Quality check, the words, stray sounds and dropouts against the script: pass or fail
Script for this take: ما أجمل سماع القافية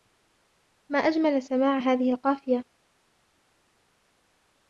fail